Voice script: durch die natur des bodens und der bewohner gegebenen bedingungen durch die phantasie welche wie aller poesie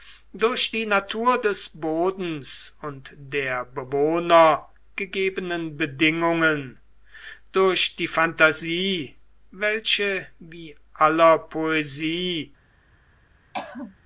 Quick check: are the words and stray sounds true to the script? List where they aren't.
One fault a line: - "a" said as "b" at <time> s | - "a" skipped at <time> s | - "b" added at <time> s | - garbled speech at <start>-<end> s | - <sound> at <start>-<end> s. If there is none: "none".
- throat clearing at 13.5-14.0 s